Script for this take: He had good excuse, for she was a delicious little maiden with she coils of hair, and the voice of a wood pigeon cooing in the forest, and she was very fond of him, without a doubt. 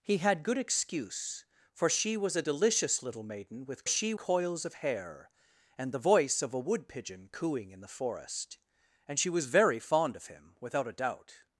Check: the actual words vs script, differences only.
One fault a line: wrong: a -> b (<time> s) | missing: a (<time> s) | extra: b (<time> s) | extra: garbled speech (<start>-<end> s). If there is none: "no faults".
no faults